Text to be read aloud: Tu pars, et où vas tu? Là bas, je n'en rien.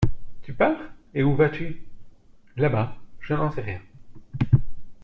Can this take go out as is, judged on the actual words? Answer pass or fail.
fail